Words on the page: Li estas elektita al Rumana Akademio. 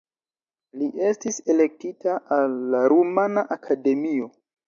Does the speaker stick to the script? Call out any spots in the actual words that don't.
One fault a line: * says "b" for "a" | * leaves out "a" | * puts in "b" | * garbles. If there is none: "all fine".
* says "estis" for "estas"
* puts in "la"